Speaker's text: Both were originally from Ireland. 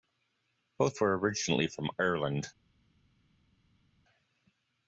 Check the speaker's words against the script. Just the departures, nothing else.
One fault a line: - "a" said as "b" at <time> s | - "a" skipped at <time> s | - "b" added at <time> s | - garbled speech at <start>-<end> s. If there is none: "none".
none